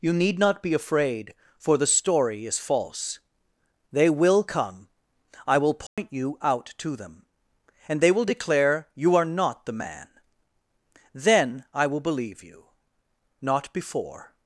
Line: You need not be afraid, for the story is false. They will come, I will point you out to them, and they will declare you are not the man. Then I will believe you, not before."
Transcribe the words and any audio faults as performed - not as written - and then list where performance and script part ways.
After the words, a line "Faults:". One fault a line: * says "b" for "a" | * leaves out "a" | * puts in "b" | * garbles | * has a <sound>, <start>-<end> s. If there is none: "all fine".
You need not be afraid, for the story is false. They will come, I will point you out to them, and they will declare you are not the man. Then I will believe you, not before."
Faults:
* has a dropout, 5.9-6.0 s